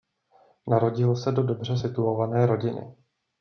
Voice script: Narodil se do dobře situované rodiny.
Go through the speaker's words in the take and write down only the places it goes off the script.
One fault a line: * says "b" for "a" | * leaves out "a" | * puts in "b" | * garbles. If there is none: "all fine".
all fine